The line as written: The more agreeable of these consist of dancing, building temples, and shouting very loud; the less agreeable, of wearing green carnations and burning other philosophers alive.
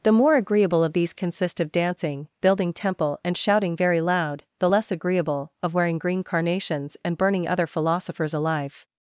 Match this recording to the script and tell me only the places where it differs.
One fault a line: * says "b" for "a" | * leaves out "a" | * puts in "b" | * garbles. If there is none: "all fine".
* says "temple" for "temples"